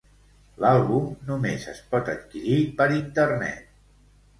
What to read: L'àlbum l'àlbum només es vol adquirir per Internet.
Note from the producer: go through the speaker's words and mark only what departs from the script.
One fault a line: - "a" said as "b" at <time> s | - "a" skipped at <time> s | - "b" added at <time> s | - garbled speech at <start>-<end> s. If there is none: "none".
- "l'àlbum" skipped at 1.1 s
- "vol" said as "pot" at 1.9 s